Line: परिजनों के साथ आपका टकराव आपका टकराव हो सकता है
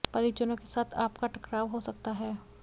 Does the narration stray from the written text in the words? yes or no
yes